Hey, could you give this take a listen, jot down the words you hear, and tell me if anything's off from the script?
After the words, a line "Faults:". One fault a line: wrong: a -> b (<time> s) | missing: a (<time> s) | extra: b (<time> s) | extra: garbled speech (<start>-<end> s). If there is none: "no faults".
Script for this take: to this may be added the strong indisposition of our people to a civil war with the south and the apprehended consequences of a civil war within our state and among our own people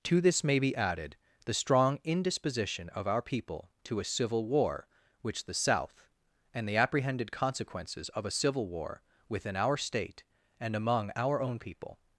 to this may be added the strong indisposition of our people to a civil war which the south and the apprehended consequences of a civil war within our state and among our own people
Faults:
wrong: with -> which (5.2 s)